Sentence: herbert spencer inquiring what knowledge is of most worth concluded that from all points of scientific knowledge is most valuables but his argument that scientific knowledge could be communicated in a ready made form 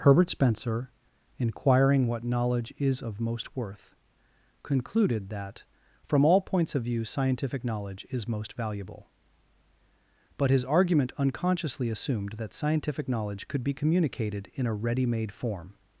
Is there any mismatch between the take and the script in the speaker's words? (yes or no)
yes